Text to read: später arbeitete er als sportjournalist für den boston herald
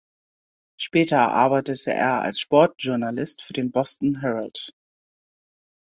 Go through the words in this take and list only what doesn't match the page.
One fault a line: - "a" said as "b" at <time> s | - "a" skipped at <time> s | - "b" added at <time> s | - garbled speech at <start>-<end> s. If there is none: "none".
none